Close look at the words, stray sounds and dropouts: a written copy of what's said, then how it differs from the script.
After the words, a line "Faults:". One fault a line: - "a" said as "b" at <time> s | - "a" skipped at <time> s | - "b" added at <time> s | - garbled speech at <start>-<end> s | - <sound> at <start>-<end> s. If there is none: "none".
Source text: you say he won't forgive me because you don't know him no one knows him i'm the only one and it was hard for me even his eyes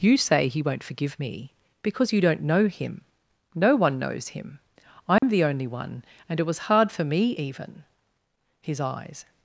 you say he won't forgive me because you don't know him no one knows him i'm the only one and it was hard for me even his eyes
Faults:
- dropout at 5.2-5.2 s